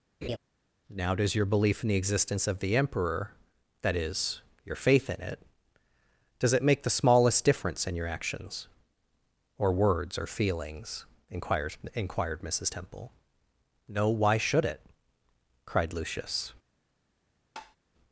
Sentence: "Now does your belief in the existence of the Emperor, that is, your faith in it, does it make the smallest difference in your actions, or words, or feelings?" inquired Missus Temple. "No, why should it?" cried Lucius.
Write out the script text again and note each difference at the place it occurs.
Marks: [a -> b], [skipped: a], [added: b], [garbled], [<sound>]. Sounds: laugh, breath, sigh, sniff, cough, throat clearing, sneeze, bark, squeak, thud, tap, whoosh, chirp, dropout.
[laugh] "Now does your belief in the existence of the Emperor, that is, your faith in it, does it make the smallest difference in your actions, or words, or feelings?" inquired [added: inquired] Missus Temple. "No, why should it?" cried Lucius. [tap]